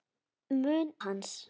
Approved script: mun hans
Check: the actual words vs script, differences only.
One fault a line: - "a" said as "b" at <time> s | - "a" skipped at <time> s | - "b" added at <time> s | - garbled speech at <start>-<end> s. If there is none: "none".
none